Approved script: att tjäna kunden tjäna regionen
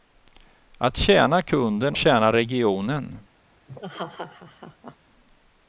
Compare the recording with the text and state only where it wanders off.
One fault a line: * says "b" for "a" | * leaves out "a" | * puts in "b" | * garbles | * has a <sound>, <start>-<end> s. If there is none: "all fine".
* has a laugh, 3.7-5.0 s